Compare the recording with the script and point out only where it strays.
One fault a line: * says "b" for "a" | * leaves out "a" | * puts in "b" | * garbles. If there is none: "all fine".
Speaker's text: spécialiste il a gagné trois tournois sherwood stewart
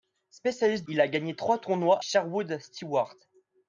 all fine